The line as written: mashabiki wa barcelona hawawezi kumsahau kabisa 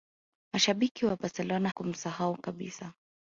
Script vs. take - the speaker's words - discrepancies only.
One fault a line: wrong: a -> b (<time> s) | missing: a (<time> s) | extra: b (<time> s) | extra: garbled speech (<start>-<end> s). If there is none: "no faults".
missing: hawawezi (1.7 s)